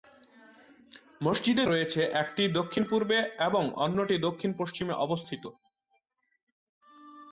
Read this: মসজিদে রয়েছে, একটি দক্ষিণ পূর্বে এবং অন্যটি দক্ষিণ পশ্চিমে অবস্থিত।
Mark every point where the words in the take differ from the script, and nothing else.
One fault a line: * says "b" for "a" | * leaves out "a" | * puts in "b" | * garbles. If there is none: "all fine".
all fine